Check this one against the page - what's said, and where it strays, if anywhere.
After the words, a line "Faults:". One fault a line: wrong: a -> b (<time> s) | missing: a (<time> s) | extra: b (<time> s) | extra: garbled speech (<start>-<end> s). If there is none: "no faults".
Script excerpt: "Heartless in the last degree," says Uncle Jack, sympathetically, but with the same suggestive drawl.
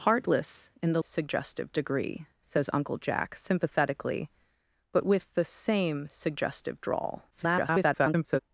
"Heartless in the suggestive degree," says Uncle Jack, sympathetically, but with the same suggestive drawl. [garbled]
Faults:
wrong: last -> suggestive (1.0 s)
extra: garbled speech (7.3-8.4 s)